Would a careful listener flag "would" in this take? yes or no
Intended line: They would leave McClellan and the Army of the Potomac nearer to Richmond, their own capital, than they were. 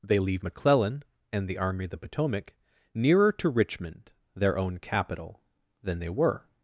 yes